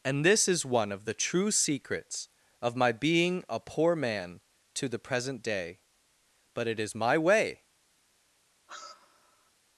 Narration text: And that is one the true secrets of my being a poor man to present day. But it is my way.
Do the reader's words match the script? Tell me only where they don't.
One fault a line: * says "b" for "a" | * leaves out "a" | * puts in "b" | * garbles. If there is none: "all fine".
* says "this" for "that"
* puts in "of"
* puts in "the"